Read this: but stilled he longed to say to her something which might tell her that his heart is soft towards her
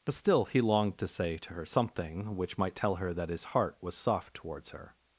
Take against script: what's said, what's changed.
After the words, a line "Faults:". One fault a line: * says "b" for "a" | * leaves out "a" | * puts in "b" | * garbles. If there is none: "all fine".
but still he longed to say to her something which might tell her that his heart was soft towards her
Faults:
* says "still" for "stilled"
* says "was" for "is"